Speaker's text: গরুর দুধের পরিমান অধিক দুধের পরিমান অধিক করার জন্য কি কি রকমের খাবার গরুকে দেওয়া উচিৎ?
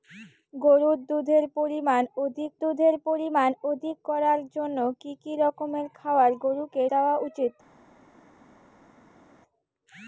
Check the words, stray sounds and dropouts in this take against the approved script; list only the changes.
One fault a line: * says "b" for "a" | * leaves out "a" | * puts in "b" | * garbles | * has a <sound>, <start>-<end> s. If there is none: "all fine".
all fine